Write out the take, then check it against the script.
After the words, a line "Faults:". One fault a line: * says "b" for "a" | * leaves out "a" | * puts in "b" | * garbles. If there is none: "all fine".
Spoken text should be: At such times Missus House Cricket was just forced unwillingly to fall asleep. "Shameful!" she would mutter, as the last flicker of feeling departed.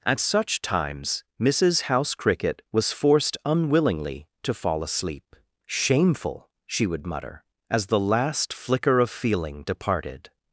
At such times Missus House Cricket was forced unwillingly to fall asleep. "Shameful!" she would mutter, as the last flicker of feeling departed.
Faults:
* leaves out "just"